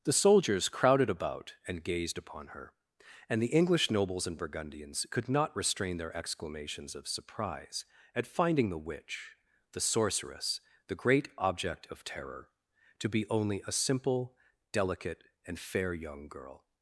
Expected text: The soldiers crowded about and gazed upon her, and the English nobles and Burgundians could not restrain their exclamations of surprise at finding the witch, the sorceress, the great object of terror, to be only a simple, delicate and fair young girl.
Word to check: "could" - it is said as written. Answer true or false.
true